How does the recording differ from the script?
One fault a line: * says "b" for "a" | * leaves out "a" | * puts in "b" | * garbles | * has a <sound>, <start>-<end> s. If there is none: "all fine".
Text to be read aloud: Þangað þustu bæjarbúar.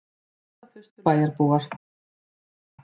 all fine